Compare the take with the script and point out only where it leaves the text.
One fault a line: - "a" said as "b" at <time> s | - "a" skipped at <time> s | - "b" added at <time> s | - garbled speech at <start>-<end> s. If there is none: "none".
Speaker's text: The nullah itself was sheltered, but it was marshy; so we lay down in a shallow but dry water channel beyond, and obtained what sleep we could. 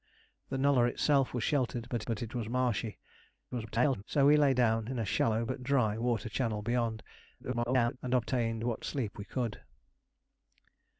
- "but" added at 2.0 s
- garbled speech at 3.5-4.0 s
- garbled speech at 7.4-8.0 s